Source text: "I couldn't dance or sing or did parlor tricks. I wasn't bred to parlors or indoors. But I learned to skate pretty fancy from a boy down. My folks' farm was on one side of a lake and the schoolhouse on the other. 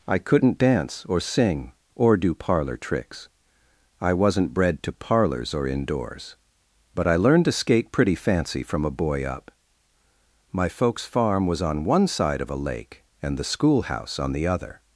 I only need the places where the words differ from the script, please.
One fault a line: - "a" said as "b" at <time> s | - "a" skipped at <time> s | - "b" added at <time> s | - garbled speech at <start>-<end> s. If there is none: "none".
- "did" said as "do" at 2.2 s
- "down" said as "up" at 9.2 s